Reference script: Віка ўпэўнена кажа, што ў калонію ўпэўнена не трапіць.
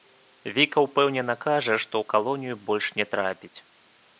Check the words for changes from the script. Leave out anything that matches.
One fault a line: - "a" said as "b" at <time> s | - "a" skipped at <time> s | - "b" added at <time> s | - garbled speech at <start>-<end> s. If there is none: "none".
- "ўпэўнена" said as "больш" at 2.7 s